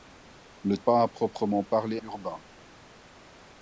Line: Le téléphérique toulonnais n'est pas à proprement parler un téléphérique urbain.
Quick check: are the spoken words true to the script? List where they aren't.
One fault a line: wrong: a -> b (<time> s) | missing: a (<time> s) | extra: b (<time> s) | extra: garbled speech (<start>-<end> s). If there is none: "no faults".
missing: téléphérique toulonnais n'est (0.8 s)
missing: un téléphérique (2.0 s)